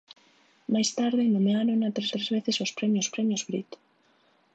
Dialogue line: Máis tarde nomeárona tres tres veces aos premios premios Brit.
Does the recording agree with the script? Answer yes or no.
yes